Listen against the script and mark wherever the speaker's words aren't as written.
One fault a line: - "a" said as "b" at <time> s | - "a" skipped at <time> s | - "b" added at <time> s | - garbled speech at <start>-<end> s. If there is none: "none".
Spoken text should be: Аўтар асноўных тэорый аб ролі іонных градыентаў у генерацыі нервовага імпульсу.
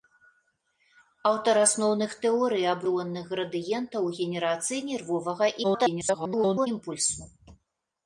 - "ролі" skipped at 2.8 s
- garbled speech at 5.6-6.7 s